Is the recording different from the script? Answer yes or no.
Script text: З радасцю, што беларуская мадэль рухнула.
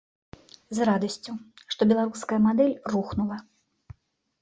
no